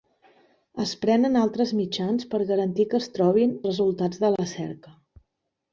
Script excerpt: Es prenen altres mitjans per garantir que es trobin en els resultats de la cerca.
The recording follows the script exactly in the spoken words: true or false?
false